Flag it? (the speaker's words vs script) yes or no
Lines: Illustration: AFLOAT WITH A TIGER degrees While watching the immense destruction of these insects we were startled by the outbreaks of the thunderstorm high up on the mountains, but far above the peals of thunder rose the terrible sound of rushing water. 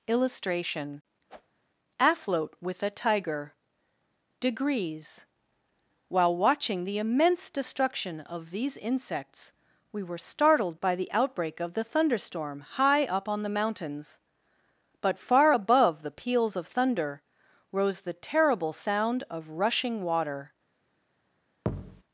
yes